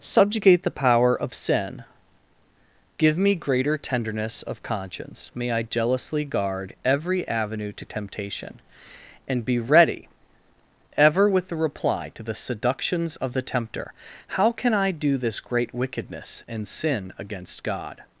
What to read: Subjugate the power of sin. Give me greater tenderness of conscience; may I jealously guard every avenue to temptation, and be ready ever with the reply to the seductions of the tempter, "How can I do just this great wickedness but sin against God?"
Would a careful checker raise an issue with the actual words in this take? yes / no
yes